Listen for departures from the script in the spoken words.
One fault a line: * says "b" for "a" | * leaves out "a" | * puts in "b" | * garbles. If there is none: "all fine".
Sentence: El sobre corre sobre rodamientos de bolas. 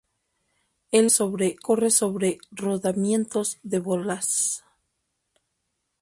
all fine